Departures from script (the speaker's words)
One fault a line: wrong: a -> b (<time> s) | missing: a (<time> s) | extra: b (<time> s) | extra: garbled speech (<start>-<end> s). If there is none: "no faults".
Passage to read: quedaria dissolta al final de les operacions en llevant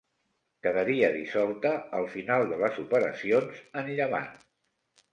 no faults